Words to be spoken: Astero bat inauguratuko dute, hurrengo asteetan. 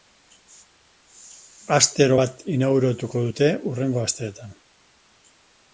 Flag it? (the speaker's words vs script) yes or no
no